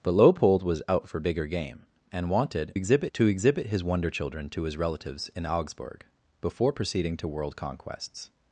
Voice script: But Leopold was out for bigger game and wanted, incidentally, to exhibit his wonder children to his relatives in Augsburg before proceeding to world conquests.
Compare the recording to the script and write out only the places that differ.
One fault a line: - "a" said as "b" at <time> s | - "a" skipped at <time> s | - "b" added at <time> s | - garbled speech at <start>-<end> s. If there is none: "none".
- "incidentally" said as "exhibit" at 2.7 s